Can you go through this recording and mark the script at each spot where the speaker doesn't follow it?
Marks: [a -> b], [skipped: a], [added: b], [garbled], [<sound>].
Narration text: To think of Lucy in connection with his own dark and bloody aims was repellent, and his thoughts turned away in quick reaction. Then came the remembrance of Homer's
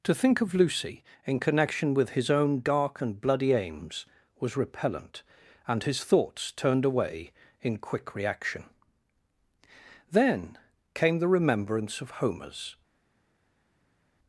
To think of Lucy in connection with his own dark and bloody aims was repellent, and his thoughts turned away in quick reaction. Then came the remembrance of Homer's